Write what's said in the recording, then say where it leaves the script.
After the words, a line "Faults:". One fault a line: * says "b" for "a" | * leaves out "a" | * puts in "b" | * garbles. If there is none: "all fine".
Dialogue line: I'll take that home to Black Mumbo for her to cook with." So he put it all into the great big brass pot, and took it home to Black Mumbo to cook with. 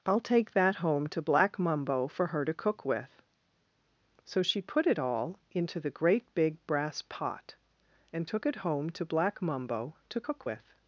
I'll take that home to Black Mumbo for her to cook with." So she put it all into the great big brass pot, and took it home to Black Mumbo to cook with.
Faults:
* says "she" for "he"